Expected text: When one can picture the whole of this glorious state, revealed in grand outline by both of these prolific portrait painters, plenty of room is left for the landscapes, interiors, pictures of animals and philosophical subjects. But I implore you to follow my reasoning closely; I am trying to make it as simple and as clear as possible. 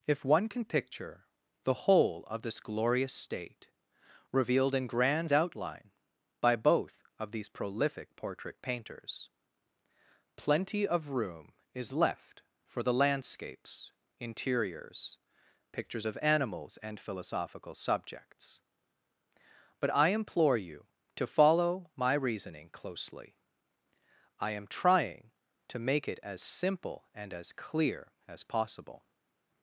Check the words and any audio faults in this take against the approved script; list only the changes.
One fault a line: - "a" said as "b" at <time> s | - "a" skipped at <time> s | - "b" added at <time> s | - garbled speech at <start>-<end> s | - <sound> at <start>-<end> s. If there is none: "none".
- "When" said as "If" at 0.1 s